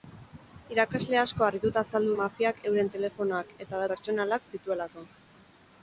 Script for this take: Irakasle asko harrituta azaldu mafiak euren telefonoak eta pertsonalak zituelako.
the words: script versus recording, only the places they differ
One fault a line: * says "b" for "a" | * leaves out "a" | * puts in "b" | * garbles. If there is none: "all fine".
all fine